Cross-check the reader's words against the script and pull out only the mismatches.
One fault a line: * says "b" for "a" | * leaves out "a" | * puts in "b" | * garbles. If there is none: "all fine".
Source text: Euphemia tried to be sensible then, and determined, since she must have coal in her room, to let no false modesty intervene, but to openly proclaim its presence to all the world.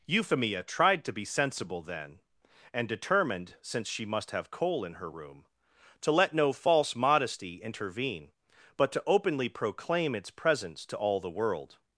all fine